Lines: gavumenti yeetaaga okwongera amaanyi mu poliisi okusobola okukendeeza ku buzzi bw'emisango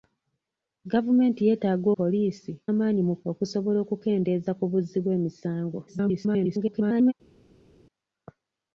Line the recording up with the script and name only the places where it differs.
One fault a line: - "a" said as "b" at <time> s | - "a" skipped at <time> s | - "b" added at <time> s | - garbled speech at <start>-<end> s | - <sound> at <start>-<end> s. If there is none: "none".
- "okwongera" said as "poliisi" at 2.0 s
- "poliisi" skipped at 3.1 s
- garbled speech at 5.9-7.1 s